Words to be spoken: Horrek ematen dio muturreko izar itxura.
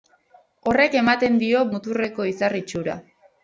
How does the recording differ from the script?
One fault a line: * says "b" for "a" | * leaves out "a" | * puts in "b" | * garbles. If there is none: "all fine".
all fine